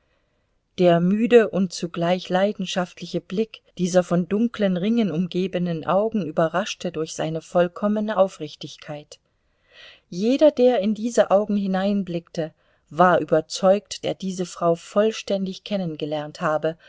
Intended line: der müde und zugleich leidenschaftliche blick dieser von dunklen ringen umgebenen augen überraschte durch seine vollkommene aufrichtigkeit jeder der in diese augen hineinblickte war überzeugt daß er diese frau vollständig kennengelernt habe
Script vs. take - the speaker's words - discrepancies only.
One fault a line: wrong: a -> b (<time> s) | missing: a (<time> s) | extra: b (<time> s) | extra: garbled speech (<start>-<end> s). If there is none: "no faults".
missing: daß (14.1 s)